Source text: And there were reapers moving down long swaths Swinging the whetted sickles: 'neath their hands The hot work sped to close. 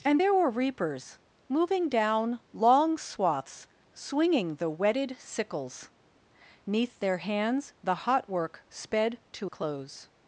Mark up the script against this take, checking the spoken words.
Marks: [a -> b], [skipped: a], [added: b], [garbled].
And there were reapers moving down long swaths Swinging the whetted sickles: 'neath their hands The hot work sped to close.